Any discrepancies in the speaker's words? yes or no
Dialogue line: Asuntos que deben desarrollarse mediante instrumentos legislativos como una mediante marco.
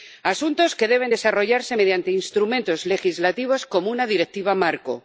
yes